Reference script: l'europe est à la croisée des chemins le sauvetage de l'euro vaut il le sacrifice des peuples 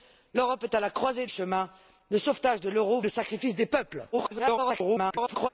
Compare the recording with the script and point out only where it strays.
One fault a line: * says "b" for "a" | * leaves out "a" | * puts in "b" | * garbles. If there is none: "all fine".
* leaves out "des"
* leaves out "vaut il"
* garbles